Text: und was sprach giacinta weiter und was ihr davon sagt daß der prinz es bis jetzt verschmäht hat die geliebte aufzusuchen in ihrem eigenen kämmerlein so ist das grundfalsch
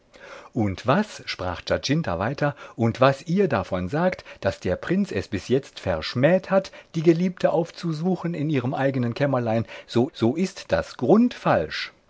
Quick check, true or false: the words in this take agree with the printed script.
false